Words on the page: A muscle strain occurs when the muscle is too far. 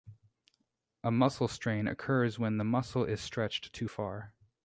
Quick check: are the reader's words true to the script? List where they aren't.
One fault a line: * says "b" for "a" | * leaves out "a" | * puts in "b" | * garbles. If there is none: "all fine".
* puts in "stretched"